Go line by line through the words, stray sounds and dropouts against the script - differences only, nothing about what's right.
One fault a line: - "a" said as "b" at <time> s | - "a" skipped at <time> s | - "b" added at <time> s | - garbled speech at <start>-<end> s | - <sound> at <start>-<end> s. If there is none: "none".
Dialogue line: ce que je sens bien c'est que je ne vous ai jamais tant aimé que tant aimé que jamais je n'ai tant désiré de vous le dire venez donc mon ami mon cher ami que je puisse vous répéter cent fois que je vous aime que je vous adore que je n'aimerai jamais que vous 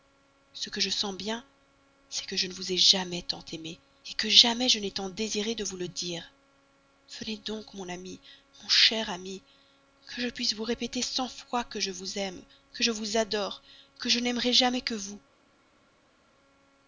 - "tant aimé que" skipped at 4.3 s